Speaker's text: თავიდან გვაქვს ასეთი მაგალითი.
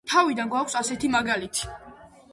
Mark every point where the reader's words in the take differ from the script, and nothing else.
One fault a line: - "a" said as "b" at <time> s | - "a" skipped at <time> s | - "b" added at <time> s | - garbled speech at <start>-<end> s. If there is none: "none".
none